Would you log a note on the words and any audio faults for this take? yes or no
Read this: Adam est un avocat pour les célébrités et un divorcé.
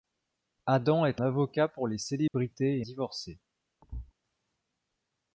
yes